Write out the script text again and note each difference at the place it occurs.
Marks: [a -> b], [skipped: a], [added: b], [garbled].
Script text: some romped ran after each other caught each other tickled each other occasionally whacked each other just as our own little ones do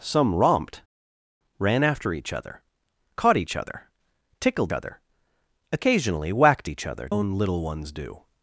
some romped ran after each other caught each other tickled [skipped: each] other occasionally whacked each other [skipped: just as our] own little ones do